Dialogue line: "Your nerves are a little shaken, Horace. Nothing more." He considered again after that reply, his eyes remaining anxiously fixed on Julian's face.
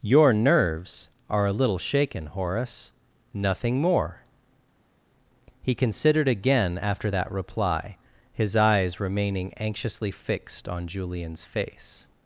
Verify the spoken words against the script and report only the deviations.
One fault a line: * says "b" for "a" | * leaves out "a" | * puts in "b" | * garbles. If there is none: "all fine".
all fine